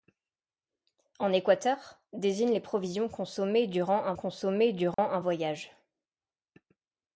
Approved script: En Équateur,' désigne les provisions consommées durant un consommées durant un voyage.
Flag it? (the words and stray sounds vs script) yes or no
yes